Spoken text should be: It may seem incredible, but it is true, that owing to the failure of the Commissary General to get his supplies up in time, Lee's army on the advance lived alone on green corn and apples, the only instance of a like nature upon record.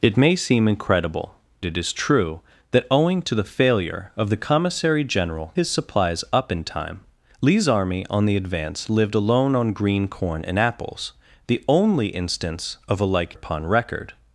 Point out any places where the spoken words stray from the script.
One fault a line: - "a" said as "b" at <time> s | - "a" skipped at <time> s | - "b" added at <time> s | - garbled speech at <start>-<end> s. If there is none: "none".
- "but" skipped at 1.4 s
- "to get" skipped at 5.5 s
- "nature" skipped at 13.4 s